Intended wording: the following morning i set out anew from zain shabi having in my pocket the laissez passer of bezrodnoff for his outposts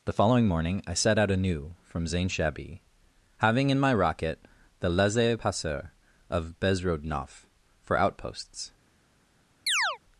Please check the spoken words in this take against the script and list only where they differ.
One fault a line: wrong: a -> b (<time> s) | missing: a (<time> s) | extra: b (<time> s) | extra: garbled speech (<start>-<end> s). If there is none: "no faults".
wrong: pocket -> rocket (3.9 s)
missing: his (8.0 s)